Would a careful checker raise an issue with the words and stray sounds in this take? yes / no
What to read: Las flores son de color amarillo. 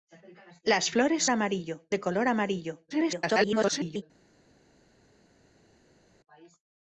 yes